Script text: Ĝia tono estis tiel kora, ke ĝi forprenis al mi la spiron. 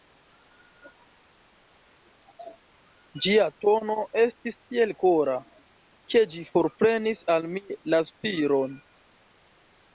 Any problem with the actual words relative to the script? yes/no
no